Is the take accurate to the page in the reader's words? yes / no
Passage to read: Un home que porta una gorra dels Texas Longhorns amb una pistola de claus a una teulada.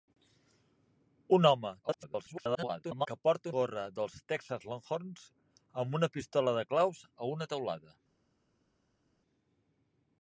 no